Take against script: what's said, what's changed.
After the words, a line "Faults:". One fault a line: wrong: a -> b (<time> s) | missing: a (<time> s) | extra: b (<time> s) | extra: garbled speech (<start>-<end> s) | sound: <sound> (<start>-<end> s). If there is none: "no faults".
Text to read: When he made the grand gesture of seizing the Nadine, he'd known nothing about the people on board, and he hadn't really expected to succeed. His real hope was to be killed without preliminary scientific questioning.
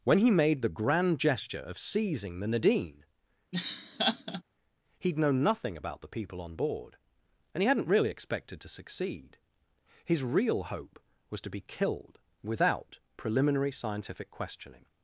When he made the grand gesture of seizing the Nadine, he'd known nothing about the people on board, and he hadn't really expected to succeed. His real hope was to be killed without preliminary scientific questioning.
Faults:
sound: laugh (3.5-4.4 s)